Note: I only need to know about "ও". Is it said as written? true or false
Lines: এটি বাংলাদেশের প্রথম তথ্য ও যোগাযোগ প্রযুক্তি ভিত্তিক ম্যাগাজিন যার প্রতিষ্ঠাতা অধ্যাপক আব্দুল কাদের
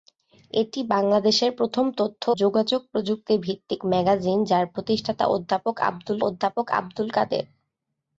false